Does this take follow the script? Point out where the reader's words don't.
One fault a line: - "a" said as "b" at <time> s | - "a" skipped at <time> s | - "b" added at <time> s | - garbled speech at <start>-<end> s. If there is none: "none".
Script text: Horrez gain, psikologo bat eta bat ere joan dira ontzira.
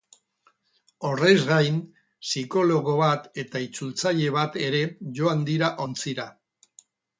- "itzultzaile" added at 3.7 s